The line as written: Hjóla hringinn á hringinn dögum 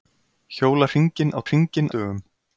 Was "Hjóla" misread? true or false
false